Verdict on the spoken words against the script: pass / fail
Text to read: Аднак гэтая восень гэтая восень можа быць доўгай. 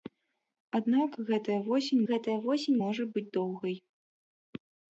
pass